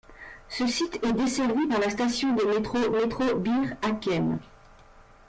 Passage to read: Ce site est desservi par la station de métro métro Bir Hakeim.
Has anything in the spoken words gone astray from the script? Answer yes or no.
no